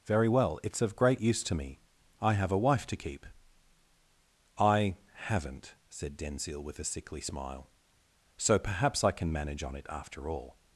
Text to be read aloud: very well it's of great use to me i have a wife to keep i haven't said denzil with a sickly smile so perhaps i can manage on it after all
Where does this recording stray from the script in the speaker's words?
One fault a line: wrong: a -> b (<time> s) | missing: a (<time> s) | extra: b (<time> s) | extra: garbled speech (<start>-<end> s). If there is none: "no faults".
no faults